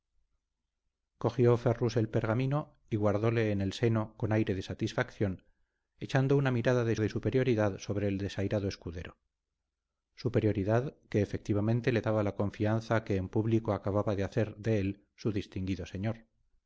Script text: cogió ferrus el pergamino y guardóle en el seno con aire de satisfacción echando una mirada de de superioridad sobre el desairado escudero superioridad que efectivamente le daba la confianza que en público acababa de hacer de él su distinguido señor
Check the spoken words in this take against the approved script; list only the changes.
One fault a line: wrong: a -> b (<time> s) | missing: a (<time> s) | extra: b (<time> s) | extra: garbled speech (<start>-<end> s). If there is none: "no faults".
no faults